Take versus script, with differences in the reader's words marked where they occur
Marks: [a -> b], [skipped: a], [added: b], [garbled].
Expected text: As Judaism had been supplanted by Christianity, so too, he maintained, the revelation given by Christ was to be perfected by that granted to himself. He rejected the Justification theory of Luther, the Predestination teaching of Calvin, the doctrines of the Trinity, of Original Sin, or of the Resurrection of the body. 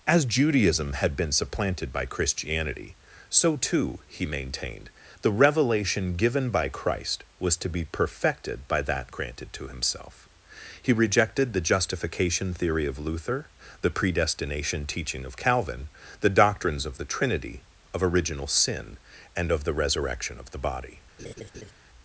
As Judaism had been supplanted by Christianity, so too, he maintained, the revelation given by Christ was to be perfected by that granted to himself. He rejected the Justification theory of Luther, the Predestination teaching of Calvin, the doctrines of the Trinity, of Original Sin, [or -> and] of the Resurrection of the body.